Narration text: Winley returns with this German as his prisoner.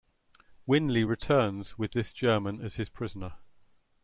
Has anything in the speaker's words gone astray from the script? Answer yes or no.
no